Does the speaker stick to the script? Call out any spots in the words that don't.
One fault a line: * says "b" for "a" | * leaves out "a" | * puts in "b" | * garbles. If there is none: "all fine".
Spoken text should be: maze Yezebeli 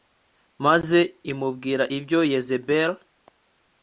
* puts in "imubwira ibyo"